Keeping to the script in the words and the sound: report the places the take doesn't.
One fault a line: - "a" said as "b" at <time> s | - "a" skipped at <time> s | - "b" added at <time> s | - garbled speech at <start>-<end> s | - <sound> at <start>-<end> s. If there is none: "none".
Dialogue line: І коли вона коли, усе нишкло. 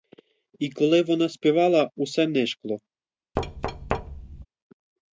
- "коли" said as "співала" at 1.3 s
- thud at 3.4-4.5 s